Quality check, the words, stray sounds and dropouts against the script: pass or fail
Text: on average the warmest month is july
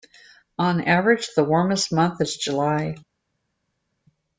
pass